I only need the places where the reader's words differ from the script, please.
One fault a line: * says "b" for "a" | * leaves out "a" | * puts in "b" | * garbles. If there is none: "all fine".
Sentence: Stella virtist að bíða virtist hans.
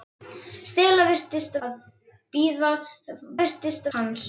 all fine